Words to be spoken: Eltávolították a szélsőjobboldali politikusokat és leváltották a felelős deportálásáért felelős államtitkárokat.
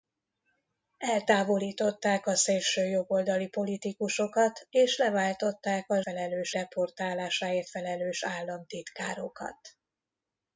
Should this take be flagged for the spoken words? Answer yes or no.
no